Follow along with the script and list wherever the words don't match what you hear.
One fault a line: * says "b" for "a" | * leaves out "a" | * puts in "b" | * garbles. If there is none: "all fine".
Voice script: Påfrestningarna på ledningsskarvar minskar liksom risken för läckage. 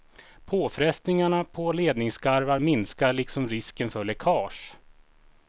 all fine